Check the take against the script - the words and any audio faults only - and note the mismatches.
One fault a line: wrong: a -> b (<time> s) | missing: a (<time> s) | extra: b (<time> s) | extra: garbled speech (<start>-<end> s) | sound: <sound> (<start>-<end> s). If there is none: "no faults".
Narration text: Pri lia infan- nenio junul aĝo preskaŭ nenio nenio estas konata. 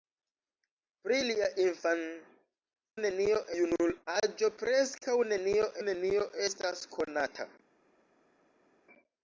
no faults